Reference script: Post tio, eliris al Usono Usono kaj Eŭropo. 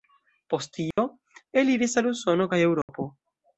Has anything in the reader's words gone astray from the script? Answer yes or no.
yes